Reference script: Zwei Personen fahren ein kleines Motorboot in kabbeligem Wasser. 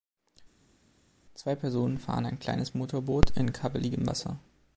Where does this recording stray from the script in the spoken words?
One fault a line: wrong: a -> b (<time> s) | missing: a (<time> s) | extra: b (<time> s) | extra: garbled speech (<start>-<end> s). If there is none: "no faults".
no faults